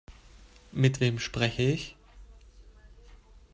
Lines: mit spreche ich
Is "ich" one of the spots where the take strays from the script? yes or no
no